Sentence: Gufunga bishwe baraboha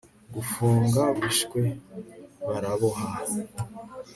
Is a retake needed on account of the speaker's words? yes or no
no